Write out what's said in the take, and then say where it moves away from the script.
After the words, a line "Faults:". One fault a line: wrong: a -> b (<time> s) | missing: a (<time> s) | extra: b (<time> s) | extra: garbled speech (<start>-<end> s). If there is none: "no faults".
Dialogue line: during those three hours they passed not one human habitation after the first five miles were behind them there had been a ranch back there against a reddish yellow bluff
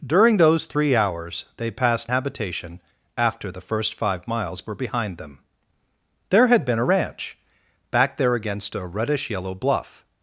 during those three hours they passed habitation after the first five miles were behind them there had been a ranch back there against a reddish yellow bluff
Faults:
missing: not one human (2.1 s)